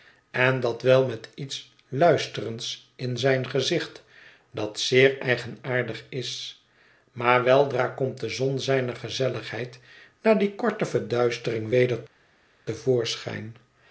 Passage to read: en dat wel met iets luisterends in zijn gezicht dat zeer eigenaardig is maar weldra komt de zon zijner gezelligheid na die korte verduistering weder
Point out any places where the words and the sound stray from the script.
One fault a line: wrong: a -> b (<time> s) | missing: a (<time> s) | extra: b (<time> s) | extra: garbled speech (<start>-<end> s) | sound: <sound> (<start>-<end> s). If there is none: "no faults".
no faults